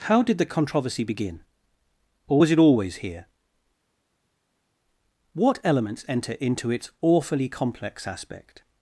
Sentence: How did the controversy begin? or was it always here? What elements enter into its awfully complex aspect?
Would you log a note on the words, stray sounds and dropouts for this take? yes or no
no